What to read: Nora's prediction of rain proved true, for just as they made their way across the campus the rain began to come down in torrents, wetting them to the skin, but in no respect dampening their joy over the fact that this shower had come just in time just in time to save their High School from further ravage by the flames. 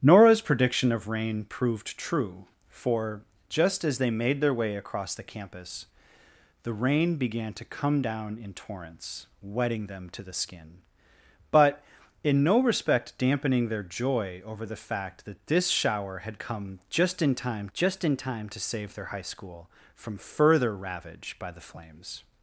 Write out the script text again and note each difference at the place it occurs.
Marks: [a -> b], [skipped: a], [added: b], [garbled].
Nora's prediction of rain proved true, for just as they made their way across the campus the rain began to come down in torrents, wetting them to the skin, but in no respect dampening their joy over the fact that this shower had come just in time just in time to save their High School from further ravage by the flames.